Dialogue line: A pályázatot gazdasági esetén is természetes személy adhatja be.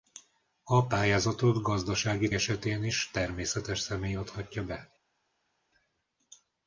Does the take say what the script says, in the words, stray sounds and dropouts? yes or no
yes